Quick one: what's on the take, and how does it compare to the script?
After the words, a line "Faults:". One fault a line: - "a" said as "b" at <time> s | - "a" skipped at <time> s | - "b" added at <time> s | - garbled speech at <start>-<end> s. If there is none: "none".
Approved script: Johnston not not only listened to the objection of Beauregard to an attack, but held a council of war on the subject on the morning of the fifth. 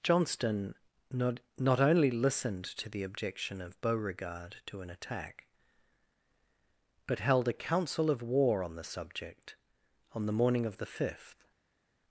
Johnston not not only listened to the objection of Beauregard to an attack, but held a council of war on the subject on the morning of the fifth.
Faults:
none